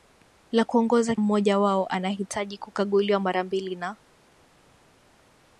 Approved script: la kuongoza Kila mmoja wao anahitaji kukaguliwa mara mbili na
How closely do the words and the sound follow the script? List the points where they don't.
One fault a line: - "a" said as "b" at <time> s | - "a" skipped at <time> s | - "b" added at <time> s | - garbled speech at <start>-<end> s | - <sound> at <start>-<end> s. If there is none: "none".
- "Kila" skipped at 1.1 s